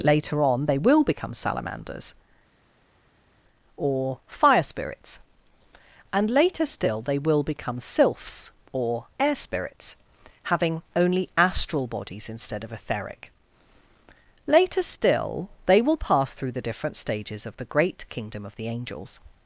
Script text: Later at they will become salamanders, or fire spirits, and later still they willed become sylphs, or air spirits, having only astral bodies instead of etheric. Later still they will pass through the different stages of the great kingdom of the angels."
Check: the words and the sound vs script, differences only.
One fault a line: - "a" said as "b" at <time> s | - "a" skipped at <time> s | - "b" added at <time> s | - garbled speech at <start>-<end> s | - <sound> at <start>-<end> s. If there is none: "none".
- "at" said as "on" at 0.4 s
- "willed" said as "will" at 7.2 s